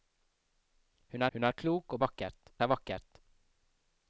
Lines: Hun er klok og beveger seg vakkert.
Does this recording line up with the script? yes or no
no